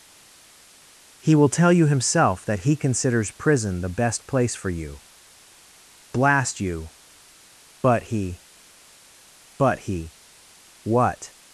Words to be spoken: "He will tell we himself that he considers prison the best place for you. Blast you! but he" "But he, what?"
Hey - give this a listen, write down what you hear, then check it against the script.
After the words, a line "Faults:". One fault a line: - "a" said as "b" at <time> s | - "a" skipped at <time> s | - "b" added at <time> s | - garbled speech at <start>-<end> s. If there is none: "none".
"He will tell you himself that he considers prison the best place for you. Blast you! but he" "But he, what?"
Faults:
- "we" said as "you" at 1.7 s